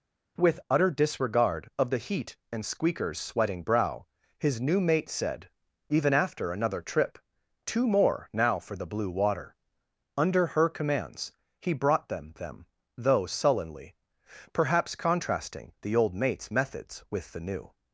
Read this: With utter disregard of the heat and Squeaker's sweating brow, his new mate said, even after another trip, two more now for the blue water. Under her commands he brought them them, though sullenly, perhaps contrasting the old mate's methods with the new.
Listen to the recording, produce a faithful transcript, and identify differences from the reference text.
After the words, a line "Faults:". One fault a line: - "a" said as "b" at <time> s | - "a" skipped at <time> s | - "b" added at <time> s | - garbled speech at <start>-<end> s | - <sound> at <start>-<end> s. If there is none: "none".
With utter disregard of the heat and Squeaker's sweating brow, his new mate said, even after another trip, two more now for the blue water. Under her commands he brought them them, though sullenly, perhaps contrasting the old mate's methods with the new.
Faults:
none